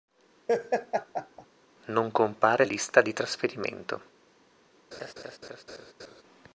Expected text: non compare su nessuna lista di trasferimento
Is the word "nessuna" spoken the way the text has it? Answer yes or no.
no